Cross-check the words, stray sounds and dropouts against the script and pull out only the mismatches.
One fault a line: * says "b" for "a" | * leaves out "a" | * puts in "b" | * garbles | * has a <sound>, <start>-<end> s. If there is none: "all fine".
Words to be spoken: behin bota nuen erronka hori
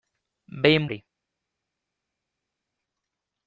* leaves out "bota nuen erronka"